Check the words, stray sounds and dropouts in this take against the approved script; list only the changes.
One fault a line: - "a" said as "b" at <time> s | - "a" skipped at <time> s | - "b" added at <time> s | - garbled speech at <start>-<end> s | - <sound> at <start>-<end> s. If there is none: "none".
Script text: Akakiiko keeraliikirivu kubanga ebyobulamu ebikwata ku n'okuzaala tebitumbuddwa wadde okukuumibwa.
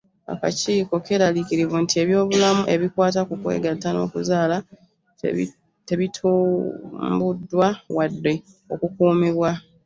- "kubanga" said as "nti" at 1.8 s
- "kwegatta" added at 3.4 s